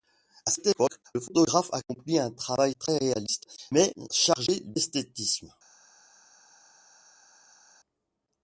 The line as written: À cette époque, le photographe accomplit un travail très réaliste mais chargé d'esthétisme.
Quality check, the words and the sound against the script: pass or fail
pass